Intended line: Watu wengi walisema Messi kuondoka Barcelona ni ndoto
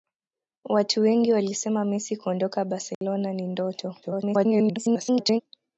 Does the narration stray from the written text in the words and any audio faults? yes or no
yes